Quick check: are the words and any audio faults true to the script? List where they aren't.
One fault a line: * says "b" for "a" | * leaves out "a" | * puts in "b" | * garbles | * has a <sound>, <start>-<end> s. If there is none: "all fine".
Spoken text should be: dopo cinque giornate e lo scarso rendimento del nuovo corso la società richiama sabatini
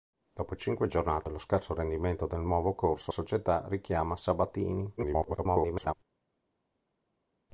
* leaves out "la"
* garbles